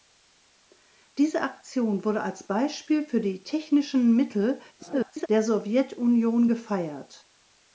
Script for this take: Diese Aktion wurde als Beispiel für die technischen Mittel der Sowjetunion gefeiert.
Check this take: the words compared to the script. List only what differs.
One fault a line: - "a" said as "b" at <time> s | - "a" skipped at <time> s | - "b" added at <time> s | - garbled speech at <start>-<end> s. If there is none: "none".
- garbled speech at 4.8-5.3 s